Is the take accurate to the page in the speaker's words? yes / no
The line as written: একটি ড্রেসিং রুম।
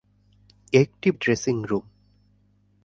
yes